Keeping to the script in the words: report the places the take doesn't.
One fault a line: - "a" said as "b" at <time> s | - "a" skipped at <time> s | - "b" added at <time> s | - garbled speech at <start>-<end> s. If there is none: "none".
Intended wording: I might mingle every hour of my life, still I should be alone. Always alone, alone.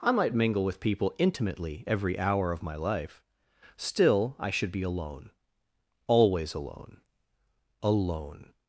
- "with people intimately" added at 0.6 s